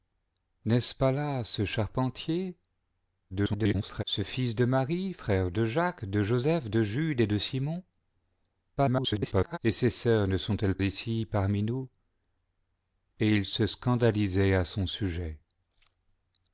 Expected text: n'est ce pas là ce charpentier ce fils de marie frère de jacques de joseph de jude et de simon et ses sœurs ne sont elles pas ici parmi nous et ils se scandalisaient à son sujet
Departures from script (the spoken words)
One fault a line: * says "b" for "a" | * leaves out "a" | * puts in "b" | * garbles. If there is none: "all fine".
* garbles
* garbles
* leaves out "pas"